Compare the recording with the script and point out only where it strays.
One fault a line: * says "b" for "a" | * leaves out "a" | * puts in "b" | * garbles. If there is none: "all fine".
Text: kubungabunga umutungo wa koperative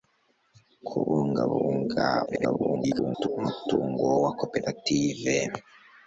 * garbles